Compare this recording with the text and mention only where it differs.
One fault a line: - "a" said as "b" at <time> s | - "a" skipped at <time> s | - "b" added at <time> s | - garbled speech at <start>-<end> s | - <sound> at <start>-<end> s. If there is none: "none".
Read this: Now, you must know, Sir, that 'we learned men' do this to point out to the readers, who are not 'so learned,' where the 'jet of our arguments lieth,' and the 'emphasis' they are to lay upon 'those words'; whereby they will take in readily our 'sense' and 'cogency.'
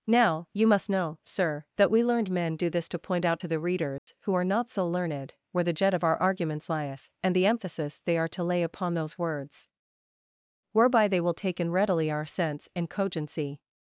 - dropout at 4.0-4.1 s